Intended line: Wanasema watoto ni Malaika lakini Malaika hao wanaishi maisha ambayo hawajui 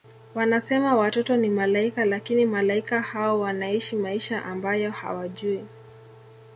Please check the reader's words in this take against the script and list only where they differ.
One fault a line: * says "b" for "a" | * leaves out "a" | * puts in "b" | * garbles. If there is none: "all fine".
all fine